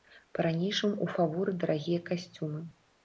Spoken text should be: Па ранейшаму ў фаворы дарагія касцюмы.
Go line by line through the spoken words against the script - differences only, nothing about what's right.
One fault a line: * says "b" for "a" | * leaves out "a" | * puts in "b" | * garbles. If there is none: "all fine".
all fine